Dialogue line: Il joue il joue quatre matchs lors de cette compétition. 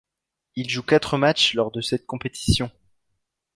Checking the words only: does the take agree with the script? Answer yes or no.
no